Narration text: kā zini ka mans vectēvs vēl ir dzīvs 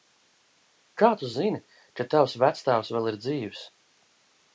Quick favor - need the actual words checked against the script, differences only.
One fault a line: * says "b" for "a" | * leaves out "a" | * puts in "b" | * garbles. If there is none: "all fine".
* puts in "tu"
* says "tavs" for "mans"